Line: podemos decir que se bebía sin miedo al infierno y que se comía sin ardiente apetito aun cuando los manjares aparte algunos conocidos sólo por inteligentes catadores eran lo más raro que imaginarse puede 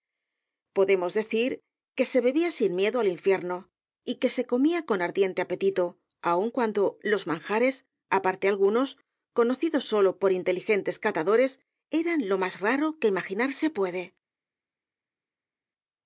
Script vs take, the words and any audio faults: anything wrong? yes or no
yes